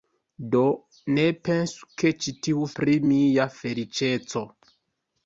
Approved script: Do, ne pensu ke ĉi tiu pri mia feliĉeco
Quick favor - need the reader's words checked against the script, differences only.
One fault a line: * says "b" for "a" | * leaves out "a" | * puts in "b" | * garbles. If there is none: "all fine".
all fine